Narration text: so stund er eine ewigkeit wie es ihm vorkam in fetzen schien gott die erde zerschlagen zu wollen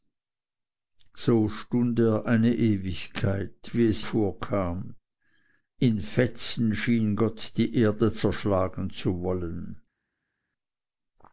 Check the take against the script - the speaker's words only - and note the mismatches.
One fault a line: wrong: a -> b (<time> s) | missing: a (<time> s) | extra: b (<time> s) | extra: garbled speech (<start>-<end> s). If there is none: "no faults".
missing: ihm (4.0 s)